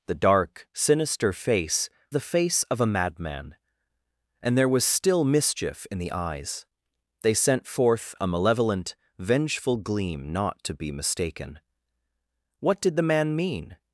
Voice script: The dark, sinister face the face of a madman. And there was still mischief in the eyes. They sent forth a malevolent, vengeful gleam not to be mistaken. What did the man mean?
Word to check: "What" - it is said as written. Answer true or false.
true